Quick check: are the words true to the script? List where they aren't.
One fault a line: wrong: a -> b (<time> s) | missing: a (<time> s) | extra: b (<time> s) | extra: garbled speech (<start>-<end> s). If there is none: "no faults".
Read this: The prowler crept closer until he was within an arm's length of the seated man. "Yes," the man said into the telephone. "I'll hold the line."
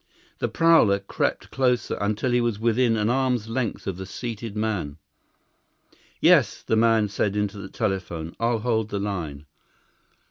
no faults